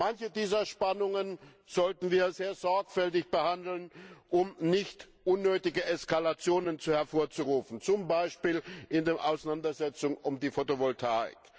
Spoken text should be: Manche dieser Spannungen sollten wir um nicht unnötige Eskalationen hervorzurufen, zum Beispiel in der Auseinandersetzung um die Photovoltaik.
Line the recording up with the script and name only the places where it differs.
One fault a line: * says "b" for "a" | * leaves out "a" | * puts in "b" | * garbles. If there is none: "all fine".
* puts in "sehr sorgfältig behandeln"